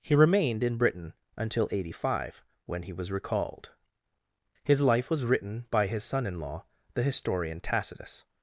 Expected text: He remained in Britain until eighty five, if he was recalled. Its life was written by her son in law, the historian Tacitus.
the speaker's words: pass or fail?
fail